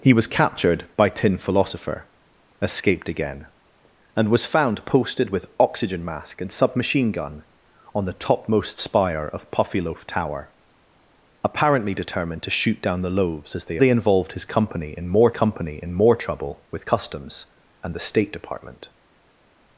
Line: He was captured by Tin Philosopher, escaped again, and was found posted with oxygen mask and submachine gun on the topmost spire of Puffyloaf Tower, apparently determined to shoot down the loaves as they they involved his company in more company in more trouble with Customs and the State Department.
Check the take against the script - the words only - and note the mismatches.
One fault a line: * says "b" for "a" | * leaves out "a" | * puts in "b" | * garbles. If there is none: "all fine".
all fine